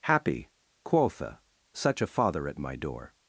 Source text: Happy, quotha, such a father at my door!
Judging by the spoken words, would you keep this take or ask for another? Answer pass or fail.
pass